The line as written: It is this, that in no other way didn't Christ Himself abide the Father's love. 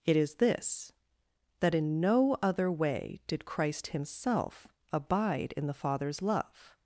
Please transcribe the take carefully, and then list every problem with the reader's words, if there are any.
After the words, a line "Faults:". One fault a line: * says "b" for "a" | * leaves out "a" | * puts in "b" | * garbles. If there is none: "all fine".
It is this, that in no other way did Christ Himself abide in the Father's love.
Faults:
* says "did" for "didn't"
* puts in "in"